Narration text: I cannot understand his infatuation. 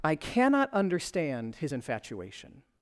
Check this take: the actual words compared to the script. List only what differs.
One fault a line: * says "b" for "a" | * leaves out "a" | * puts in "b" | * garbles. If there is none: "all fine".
all fine